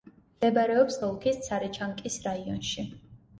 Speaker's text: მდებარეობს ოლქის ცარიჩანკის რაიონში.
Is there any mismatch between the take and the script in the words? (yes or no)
no